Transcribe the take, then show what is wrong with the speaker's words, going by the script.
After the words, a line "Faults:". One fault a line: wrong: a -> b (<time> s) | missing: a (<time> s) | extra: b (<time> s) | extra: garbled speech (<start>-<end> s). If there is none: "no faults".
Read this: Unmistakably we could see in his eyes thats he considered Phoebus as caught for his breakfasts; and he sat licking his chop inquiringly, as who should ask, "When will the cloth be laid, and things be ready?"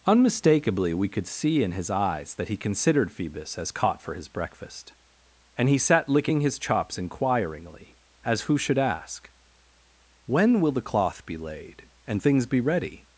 Unmistakably we could see in his eyes that he considered Phoebus as caught for his breakfast; and he sat licking his chops inquiringly, as who should ask, "When will the cloth be laid, and things be ready?"
Faults:
wrong: thats -> that (2.4 s)
wrong: breakfasts -> breakfast (4.3 s)
wrong: chop -> chops (6.6 s)